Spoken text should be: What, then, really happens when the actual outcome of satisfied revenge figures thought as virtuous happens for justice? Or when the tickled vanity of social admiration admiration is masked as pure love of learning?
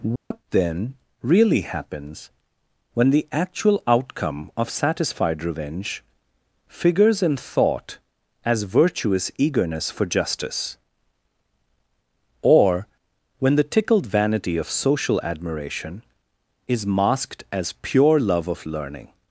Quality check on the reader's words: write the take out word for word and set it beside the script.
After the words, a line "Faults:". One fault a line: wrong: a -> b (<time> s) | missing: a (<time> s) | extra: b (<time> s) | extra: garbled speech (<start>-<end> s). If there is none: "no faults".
What, then, really happens when the actual outcome of satisfied revenge figures in thought as virtuous eagerness for justice? Or when the tickled vanity of social admiration is masked as pure love of learning?
Faults:
extra: in (7.2 s)
wrong: happens -> eagerness (9.4 s)
missing: admiration (16.0 s)